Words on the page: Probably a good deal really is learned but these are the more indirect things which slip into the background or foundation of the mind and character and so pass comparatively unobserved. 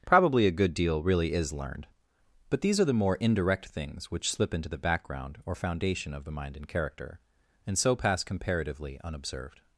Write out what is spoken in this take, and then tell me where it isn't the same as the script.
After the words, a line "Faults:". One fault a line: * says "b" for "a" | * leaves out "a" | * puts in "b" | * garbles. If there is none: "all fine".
Probably a good deal really is learned but these are the more indirect things which slip into the background or foundation of the mind and character and so pass comparatively unobserved.
Faults:
all fine